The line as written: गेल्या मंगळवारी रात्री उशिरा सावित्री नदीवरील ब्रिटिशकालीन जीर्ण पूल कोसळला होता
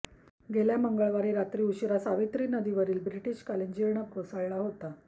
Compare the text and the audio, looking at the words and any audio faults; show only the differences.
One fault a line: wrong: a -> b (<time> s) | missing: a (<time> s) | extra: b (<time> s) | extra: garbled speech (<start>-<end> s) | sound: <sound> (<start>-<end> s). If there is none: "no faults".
missing: पूल (4.0 s)